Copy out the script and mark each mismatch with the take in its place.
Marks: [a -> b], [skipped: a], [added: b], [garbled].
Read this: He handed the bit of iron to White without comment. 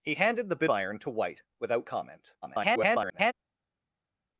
He handed the bit [skipped: of] iron to White without comment. [garbled]